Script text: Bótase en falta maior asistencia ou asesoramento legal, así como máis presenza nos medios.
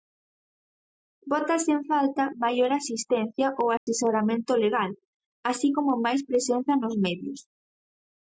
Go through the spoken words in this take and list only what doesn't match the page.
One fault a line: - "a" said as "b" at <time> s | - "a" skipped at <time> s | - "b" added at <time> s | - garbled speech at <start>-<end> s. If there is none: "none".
none